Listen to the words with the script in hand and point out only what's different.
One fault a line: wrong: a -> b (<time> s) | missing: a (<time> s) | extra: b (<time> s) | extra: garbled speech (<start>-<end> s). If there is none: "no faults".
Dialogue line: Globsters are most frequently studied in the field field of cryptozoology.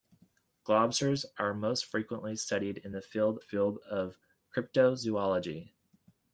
no faults